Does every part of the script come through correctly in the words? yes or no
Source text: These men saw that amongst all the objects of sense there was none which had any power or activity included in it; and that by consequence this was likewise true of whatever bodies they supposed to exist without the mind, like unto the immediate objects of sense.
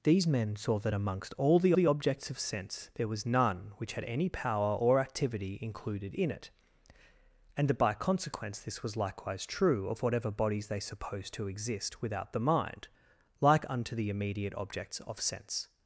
no